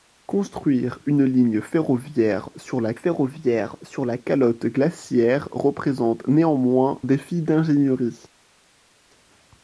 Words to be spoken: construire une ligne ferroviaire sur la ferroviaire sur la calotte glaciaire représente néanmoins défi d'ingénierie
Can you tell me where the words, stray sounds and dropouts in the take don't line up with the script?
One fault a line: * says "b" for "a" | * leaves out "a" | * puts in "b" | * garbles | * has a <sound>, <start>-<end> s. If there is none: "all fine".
all fine